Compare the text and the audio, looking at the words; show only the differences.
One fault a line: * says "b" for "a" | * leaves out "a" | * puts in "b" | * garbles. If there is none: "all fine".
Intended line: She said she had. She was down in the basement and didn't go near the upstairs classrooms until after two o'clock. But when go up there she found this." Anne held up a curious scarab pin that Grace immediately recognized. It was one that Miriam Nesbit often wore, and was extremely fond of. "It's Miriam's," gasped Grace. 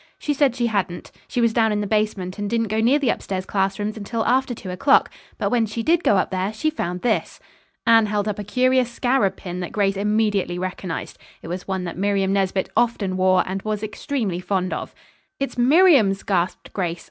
* says "hadn't" for "had"
* puts in "she did"